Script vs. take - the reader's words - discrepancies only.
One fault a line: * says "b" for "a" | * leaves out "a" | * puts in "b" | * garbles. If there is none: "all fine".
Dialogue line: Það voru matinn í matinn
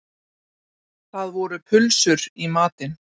* says "pulsur" for "matinn"